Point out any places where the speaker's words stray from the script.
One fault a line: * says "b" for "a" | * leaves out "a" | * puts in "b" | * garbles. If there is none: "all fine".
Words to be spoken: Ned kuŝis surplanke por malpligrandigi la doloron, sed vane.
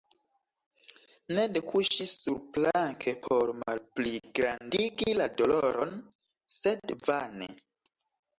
all fine